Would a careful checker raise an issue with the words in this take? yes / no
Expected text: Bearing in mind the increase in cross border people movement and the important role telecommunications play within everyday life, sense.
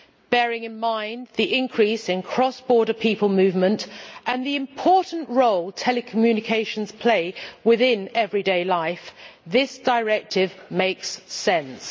yes